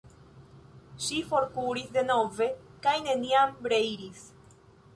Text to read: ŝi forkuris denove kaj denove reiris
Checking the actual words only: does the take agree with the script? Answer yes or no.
no